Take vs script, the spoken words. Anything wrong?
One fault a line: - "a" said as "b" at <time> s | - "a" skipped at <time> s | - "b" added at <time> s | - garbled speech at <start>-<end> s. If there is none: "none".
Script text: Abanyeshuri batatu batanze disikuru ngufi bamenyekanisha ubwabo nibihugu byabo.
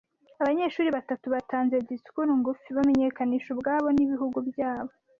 none